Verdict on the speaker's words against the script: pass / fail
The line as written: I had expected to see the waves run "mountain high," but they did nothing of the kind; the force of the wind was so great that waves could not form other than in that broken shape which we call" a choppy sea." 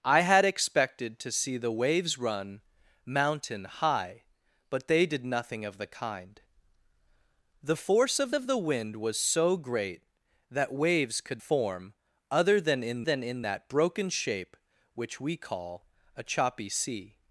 fail